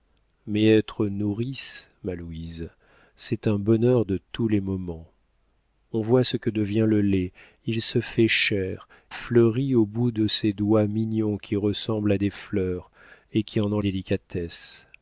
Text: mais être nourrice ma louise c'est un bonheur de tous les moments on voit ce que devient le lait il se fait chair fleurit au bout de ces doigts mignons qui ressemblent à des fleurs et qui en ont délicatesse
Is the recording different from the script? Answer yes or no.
no